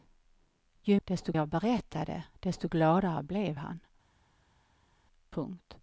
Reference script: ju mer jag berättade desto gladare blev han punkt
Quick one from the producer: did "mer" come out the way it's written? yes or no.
no